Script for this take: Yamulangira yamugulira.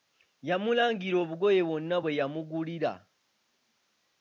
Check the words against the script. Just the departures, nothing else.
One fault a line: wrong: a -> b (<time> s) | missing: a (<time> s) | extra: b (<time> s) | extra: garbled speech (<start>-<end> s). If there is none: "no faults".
extra: obugoye bwonna bwe (1.2 s)